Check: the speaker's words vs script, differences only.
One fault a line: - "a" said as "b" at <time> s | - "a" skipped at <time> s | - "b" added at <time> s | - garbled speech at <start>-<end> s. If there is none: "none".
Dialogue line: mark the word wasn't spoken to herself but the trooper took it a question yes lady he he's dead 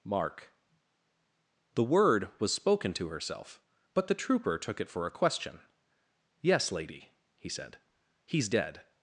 - "wasn't" said as "was" at 2.4 s
- "for" added at 4.9 s
- "said" added at 7.5 s